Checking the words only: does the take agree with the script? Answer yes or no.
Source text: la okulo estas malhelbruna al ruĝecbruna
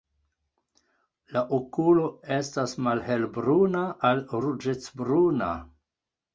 yes